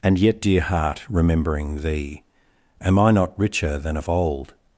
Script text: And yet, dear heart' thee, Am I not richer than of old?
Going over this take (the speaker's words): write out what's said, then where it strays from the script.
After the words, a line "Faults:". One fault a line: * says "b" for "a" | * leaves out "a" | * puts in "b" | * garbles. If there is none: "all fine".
And yet, dear heart' remembering thee, Am I not richer than of old?
Faults:
* puts in "remembering"